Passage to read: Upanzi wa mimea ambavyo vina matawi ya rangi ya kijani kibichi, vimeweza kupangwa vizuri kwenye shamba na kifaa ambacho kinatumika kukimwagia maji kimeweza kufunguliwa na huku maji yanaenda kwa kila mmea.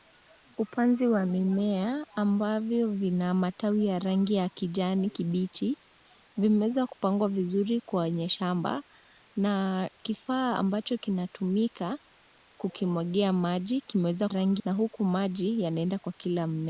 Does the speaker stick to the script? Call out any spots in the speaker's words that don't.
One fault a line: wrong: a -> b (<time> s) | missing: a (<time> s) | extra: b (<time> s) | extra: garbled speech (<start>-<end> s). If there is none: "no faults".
wrong: kufunguliwa -> rangi (14.3 s)